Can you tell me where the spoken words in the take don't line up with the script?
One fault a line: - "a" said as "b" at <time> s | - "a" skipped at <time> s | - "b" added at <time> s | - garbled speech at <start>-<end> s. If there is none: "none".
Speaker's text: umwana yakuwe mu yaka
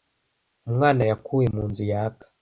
- "nzu" added at 1.7 s